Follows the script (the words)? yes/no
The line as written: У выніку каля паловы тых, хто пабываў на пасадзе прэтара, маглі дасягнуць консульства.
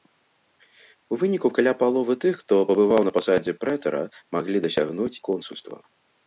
yes